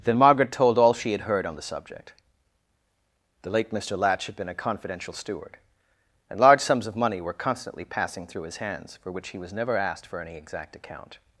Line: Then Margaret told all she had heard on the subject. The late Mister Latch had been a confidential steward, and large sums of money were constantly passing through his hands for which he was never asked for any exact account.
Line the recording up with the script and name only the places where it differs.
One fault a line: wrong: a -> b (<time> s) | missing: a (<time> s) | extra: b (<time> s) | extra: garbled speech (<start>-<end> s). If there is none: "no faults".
no faults